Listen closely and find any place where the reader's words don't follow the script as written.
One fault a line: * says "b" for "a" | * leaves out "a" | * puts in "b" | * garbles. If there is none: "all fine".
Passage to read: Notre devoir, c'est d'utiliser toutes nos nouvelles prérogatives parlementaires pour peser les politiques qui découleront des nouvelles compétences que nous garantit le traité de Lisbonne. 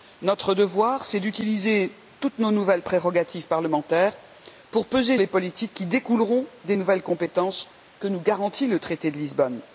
all fine